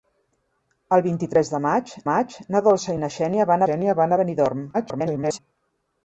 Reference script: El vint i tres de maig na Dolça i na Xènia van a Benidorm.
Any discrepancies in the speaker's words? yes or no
yes